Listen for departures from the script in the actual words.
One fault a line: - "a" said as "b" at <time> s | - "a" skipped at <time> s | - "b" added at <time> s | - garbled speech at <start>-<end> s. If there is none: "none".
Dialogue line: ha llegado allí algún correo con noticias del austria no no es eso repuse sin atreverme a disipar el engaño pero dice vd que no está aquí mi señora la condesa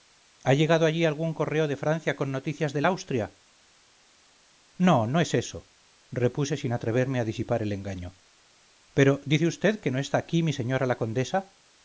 - "de francia" added at 1.7 s